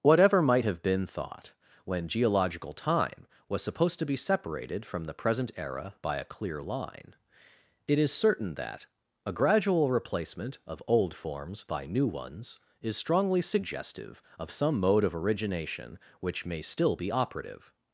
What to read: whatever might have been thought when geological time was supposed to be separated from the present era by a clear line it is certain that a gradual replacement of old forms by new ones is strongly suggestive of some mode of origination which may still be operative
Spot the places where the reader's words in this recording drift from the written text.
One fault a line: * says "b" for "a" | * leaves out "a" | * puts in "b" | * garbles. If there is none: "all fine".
all fine